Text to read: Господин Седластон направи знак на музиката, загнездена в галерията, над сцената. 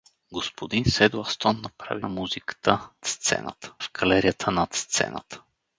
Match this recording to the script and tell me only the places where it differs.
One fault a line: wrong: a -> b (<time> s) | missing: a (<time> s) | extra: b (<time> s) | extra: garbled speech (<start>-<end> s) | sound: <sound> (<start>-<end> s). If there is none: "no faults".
missing: знак (2.0 s)
wrong: загнездена -> сцената (3.0 s)